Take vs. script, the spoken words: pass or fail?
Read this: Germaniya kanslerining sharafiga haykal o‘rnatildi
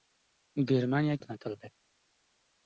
fail